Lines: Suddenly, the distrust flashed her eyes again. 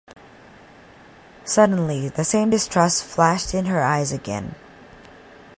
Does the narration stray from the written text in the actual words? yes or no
yes